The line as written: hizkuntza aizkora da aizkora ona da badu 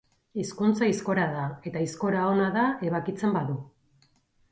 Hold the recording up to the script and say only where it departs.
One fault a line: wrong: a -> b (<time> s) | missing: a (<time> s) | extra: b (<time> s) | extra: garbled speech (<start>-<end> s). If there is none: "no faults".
extra: eta (1.7 s)
extra: ebakitzen (2.9 s)